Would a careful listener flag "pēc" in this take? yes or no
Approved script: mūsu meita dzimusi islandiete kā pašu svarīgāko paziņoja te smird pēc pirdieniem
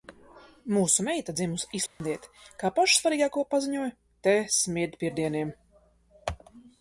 yes